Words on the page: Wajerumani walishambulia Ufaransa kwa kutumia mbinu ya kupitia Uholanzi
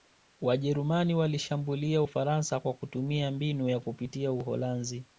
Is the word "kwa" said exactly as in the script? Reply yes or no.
yes